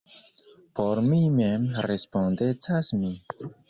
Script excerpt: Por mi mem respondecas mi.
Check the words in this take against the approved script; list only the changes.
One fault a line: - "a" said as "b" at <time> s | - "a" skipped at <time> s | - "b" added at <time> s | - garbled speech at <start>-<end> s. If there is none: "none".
none